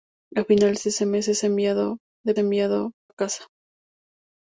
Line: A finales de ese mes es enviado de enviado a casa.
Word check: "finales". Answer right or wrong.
right